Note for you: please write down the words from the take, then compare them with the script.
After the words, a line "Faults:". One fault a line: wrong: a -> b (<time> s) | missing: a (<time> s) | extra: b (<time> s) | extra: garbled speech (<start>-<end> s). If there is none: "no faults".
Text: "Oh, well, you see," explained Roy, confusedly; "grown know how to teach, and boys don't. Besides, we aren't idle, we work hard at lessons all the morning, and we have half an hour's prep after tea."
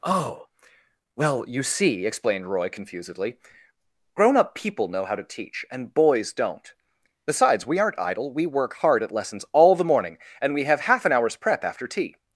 "Oh, well, you see," explained Roy, confusedly; "grown up people know how to teach, and boys don't. Besides, we aren't idle, we work hard at lessons all the morning, and we have half an hour's prep after tea."
Faults:
extra: up people (4.4 s)